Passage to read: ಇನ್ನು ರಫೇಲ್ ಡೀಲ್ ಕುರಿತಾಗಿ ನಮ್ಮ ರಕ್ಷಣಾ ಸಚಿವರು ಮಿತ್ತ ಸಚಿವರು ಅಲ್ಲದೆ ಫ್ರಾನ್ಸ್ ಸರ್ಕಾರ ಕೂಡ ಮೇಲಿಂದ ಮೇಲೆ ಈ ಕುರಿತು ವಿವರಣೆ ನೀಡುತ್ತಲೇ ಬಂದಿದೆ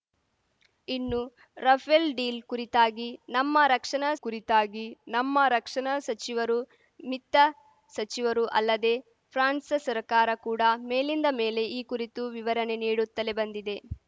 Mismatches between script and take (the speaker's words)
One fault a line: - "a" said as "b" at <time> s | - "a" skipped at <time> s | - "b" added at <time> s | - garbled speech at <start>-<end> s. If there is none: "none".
- "ಕುರಿತಾಗಿ ನಮ್ಮ ರಕ್ಷಣಾ" added at 4.2 s